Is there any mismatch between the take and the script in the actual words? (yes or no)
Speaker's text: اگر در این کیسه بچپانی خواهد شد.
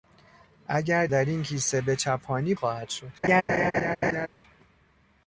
no